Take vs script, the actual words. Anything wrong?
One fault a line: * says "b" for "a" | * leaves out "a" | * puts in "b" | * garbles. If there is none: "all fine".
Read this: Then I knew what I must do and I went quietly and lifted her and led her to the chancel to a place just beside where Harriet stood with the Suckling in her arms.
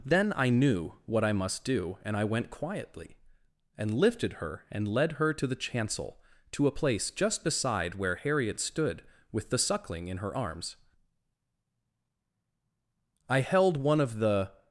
* puts in "I held one of the"